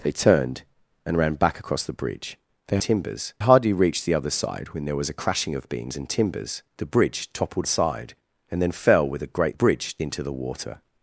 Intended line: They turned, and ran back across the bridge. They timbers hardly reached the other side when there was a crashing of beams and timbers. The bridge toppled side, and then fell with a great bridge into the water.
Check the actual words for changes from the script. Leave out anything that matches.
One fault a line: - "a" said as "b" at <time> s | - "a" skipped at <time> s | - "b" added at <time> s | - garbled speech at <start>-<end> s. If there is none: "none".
none